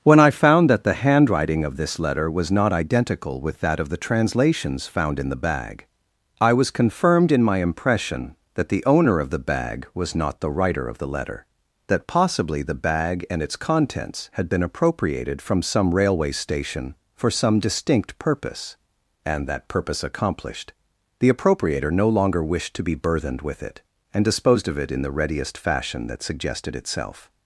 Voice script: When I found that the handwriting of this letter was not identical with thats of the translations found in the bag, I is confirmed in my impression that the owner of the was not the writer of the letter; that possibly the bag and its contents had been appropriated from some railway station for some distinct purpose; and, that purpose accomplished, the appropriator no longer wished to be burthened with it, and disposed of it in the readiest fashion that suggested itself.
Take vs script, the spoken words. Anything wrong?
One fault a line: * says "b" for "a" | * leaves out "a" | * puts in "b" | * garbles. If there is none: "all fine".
* says "that" for "thats"
* says "was" for "is"
* puts in "bag"